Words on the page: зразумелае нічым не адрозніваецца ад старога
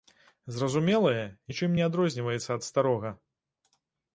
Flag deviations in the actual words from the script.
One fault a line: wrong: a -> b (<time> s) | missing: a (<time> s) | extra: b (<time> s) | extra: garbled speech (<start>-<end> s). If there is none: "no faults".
no faults